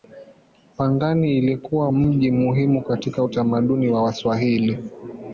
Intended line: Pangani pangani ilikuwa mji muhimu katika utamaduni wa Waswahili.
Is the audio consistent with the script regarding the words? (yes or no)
no